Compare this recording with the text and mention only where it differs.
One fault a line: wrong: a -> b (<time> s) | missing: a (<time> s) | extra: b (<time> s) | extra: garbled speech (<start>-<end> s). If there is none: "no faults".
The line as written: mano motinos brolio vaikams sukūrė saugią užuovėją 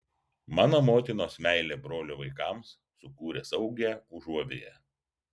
extra: meilė (1.5 s)